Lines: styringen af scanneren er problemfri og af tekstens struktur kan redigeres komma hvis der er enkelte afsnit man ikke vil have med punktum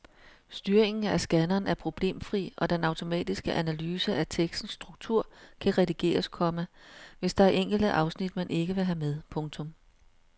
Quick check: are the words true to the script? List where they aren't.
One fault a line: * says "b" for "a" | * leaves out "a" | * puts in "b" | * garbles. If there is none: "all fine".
* puts in "den automatiske analyse"